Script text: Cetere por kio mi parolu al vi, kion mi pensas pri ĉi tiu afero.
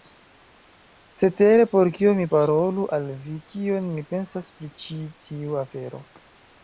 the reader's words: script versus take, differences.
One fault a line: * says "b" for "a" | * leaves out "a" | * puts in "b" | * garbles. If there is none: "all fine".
all fine